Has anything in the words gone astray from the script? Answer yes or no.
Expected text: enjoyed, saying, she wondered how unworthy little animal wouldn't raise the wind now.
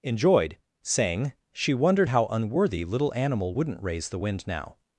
no